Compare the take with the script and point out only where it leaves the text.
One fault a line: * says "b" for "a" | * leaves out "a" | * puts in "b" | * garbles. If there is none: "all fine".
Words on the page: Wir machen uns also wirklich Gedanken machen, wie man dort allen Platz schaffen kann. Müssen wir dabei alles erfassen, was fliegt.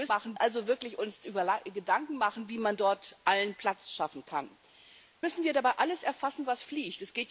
all fine